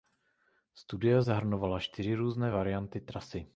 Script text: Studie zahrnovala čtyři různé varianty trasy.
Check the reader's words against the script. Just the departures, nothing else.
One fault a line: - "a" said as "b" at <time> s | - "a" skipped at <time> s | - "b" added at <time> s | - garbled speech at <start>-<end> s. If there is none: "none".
none